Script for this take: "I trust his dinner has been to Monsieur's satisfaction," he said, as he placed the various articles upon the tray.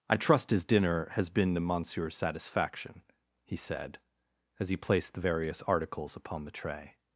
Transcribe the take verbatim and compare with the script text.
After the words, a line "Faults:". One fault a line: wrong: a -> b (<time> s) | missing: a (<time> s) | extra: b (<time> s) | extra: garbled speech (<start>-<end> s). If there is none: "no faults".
"I trust his dinner has been to Monsieur's satisfaction," he said, as he placed the various articles upon the tray.
Faults:
no faults